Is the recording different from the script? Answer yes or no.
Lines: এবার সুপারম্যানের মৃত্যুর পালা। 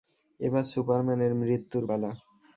no